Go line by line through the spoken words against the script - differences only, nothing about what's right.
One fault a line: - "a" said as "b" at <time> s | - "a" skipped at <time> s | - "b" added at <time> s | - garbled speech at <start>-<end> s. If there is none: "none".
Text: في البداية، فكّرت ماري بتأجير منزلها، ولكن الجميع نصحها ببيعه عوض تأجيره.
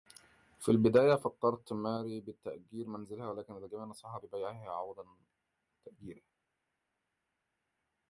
none